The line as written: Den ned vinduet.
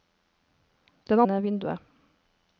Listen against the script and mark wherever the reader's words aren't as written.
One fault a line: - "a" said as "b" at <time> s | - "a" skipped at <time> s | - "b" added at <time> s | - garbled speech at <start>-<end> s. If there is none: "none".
none